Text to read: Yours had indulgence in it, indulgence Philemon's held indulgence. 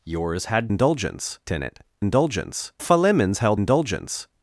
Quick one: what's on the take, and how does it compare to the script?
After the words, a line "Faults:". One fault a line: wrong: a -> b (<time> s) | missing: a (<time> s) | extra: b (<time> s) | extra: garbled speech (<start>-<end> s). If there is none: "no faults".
Yours had indulgence in it, indulgence Philemon's held indulgence.
Faults:
no faults